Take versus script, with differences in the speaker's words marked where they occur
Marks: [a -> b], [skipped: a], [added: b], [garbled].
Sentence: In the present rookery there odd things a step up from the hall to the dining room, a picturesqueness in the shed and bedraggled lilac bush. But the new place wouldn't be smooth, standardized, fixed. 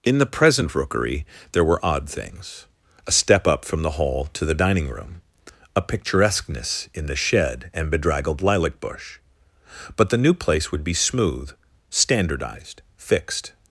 In the present rookery there [added: were] odd things a step up from the hall to the dining room, a picturesqueness in the shed and bedraggled lilac bush. But the new place [wouldn't -> would] be smooth, standardized, fixed.